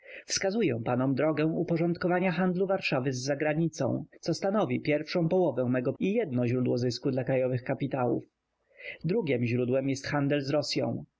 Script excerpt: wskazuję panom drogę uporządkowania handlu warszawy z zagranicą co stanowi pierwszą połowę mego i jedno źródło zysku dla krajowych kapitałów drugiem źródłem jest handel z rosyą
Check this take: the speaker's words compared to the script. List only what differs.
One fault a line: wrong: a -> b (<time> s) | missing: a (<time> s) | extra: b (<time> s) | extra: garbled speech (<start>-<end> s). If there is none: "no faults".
no faults